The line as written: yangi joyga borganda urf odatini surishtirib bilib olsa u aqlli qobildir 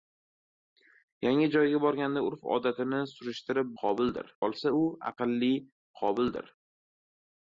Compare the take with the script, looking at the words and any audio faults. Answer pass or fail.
fail